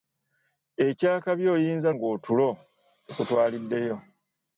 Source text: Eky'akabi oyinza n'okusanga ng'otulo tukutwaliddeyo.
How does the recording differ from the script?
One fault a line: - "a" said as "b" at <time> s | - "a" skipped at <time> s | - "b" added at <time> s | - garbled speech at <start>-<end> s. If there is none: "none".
- "n'okusanga" skipped at 1.9 s